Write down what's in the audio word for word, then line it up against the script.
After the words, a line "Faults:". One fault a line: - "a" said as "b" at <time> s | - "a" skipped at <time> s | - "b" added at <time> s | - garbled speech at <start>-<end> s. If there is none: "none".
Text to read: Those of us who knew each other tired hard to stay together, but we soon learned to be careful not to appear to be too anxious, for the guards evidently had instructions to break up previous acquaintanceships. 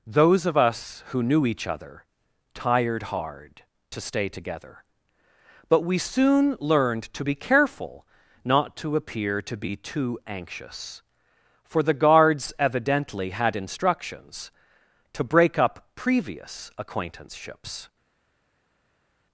Those of us who knew each other tired hard to stay together, but we soon learned to be careful not to appear to be too anxious, for the guards evidently had instructions to break up previous acquaintanceships.
Faults:
none